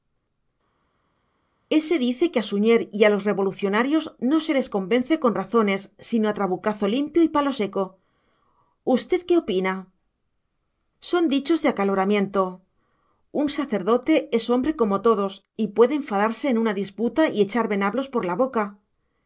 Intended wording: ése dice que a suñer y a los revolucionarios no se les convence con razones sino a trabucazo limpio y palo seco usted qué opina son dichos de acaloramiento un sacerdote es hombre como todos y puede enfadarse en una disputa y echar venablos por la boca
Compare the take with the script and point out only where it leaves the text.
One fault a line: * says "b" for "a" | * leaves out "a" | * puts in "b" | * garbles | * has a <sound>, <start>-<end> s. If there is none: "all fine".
all fine